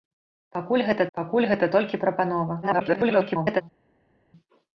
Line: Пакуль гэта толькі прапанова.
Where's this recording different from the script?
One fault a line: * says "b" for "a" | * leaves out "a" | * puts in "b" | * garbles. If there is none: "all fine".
* puts in "пакуль гэта"
* garbles